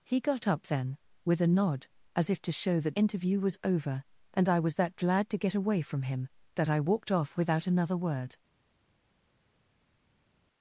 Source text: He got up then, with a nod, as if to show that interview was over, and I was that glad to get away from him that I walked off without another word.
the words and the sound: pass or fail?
pass